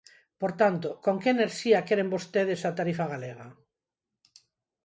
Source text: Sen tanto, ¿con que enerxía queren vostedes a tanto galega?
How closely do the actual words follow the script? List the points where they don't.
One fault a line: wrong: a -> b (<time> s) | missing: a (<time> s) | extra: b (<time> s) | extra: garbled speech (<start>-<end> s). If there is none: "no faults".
wrong: Sen -> Por (0.4 s)
wrong: tanto -> tarifa (2.8 s)